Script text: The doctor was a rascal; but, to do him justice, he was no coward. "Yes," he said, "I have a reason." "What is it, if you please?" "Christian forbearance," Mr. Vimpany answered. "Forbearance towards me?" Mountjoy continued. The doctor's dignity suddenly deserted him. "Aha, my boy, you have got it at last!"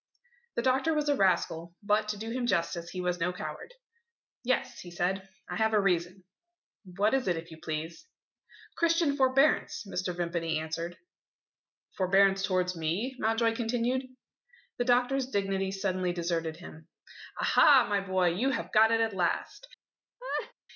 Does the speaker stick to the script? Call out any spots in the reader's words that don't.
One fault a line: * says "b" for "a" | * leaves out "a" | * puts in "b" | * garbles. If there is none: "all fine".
all fine